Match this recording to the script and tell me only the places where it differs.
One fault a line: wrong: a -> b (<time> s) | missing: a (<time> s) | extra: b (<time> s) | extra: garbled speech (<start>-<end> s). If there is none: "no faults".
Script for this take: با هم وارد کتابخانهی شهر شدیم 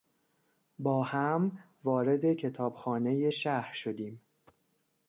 no faults